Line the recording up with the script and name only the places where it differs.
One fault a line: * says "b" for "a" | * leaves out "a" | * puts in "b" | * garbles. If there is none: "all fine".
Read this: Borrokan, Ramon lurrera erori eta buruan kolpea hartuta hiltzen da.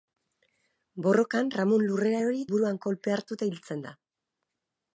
* leaves out "eta"